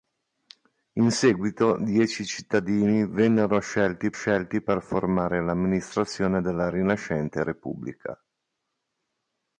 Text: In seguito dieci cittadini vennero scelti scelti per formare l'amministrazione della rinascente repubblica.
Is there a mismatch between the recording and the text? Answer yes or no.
no